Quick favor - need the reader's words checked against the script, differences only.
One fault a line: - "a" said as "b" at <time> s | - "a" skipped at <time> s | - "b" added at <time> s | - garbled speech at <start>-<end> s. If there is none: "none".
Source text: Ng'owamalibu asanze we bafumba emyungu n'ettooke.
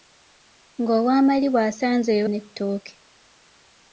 - "bafumba emyungu" skipped at 2.2 s